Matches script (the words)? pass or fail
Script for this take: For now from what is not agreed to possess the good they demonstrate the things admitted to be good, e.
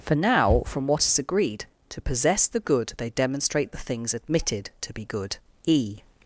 fail